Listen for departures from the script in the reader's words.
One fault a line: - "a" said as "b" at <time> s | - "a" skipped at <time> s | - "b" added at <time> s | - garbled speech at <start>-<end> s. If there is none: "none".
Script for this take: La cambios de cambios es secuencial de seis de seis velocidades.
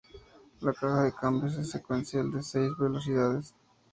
- "cambios" said as "caja" at 0.7 s
- "de seis" skipped at 2.7 s